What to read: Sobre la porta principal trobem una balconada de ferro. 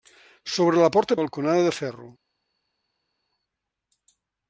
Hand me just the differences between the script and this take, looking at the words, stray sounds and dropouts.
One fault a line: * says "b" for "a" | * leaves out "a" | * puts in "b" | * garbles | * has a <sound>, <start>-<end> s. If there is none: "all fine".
* leaves out "principal trobem una"